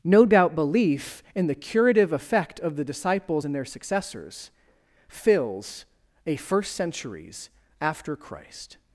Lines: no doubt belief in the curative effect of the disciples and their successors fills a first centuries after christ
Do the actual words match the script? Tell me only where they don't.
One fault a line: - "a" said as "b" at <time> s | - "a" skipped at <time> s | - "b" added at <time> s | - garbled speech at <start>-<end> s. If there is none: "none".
none